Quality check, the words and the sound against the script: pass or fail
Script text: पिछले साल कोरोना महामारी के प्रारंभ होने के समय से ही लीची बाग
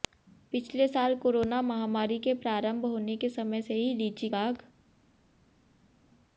pass